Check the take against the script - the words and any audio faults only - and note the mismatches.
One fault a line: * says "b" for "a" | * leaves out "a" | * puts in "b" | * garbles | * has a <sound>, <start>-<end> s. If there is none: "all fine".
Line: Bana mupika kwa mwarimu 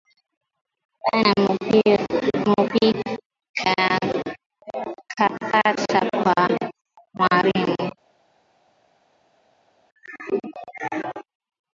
* puts in "kapata"